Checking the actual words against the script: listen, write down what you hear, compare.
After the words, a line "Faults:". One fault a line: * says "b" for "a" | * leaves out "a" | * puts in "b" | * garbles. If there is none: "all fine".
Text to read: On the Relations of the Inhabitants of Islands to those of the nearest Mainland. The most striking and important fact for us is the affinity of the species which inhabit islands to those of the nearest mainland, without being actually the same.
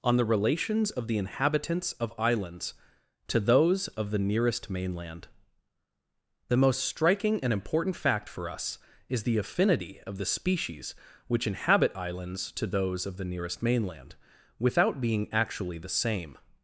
On the Relations of the Inhabitants of Islands to those of the nearest Mainland. The most striking and important fact for us is the affinity of the species which inhabit islands to those of the nearest mainland, without being actually the same.
Faults:
all fine